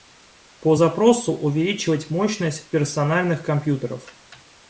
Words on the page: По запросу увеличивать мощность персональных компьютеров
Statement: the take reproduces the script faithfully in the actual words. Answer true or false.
true